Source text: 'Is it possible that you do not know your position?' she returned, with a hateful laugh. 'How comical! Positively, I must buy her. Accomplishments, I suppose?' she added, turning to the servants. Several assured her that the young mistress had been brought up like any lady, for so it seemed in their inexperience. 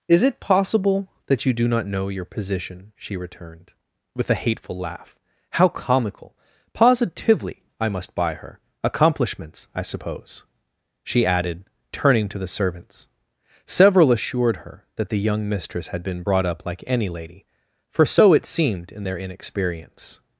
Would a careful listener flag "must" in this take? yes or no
no